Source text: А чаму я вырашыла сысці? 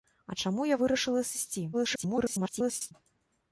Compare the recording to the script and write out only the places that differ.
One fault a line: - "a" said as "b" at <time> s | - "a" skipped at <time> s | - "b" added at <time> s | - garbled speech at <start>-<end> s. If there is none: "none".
- garbled speech at 1.7-2.9 s